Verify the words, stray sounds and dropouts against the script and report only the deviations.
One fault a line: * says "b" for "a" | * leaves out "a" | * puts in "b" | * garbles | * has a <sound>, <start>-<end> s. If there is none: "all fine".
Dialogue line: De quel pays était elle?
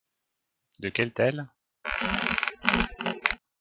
* leaves out "pays était"
* has a squeak, 1.8-3.4 s